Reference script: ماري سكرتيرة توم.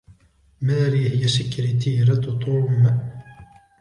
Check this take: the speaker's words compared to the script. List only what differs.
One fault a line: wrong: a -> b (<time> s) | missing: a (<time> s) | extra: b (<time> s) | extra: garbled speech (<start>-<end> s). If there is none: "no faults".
extra: هي (1.1 s)